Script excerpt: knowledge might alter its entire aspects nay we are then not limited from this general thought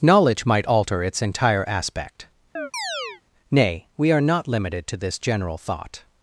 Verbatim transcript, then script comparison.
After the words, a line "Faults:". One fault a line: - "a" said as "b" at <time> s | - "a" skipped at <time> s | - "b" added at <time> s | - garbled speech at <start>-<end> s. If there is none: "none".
knowledge might alter its entire aspect nay we are not limited to this general thought
Faults:
- "aspects" said as "aspect" at 1.7 s
- "then" skipped at 4.2 s
- "from" said as "to" at 4.9 s